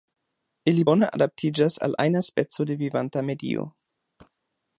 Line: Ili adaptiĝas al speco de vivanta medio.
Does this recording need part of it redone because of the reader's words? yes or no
yes